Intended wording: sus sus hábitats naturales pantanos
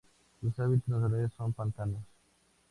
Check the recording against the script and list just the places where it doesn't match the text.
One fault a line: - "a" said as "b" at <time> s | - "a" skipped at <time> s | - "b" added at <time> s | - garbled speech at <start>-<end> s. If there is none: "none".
- "sus" skipped at 0.6 s
- "son" added at 1.4 s